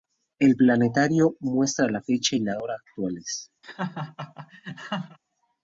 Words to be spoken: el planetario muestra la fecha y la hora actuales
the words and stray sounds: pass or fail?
fail